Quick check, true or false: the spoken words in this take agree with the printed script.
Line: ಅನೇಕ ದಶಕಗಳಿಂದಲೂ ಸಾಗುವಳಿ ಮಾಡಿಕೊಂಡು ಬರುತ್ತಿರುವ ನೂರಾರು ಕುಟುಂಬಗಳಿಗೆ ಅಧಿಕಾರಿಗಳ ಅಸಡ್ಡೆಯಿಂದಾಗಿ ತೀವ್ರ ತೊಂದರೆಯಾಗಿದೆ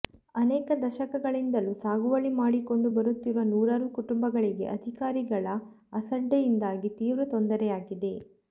true